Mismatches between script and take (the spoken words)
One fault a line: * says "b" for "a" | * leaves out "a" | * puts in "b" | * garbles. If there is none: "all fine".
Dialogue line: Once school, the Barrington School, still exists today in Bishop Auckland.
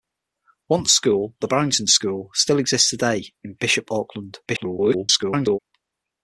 * garbles